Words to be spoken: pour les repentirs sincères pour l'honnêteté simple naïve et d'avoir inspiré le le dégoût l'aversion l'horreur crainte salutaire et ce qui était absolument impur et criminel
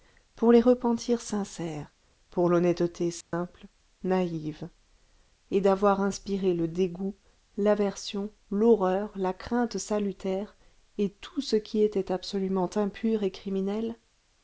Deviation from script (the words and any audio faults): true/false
true